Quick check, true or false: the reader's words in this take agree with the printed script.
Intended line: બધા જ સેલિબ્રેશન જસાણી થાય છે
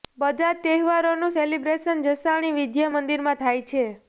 false